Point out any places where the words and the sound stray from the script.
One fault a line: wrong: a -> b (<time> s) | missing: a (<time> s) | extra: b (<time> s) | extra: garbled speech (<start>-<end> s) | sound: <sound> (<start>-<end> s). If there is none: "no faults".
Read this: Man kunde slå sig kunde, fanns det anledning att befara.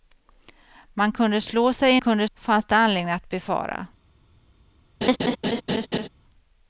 sound: laugh (5.0-6.1 s)